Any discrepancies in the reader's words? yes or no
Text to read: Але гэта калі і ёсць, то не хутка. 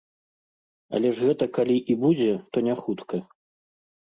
yes